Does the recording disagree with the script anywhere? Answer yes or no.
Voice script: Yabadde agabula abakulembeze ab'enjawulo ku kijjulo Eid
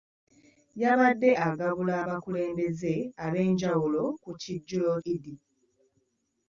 no